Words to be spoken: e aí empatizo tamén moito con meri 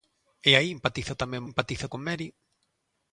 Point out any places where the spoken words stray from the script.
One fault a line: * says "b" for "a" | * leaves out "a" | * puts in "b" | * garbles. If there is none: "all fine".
* says "empatizo" for "moito"